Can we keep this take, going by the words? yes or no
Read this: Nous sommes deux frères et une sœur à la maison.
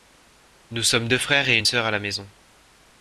yes